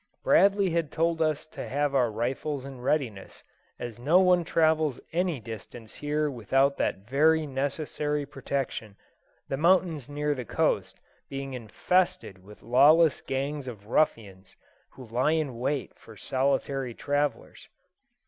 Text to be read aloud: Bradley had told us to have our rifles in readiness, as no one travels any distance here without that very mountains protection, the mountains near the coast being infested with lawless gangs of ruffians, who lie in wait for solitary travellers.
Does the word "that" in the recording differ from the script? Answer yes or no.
no